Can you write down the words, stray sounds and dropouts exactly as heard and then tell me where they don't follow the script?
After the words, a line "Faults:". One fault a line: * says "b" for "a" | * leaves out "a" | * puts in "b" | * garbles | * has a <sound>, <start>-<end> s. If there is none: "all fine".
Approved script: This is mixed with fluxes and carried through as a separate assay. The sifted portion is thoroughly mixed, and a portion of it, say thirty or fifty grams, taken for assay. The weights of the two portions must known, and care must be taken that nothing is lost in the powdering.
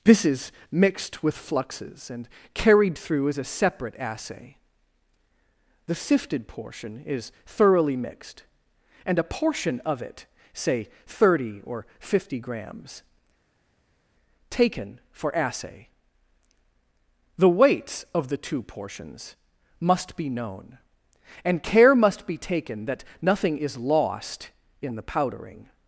This is mixed with fluxes and carried through as a separate assay. The sifted portion is thoroughly mixed, and a portion of it, say thirty or fifty grams, taken for assay. The weights of the two portions must be known, and care must be taken that nothing is lost in the powdering.
Faults:
* puts in "be"